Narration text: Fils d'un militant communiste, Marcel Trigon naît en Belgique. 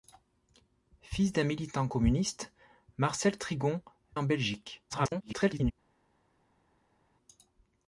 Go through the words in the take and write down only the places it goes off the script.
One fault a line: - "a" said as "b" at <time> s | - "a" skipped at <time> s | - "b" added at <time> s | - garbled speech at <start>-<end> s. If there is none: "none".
- "naît" skipped at 3.8 s
- garbled speech at 4.9-5.7 s